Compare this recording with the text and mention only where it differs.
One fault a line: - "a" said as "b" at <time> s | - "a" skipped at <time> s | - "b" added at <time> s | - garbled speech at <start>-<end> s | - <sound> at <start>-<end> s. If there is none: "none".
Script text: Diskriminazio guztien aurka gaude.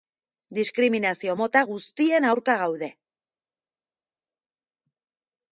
- "mota" added at 1.4 s